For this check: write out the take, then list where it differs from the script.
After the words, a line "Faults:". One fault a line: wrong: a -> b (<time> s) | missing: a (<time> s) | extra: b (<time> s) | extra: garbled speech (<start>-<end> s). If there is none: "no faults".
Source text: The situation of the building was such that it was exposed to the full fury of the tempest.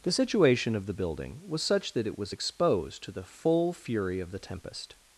The situation of the building was such that it was exposed to the full fury of the tempest.
Faults:
no faults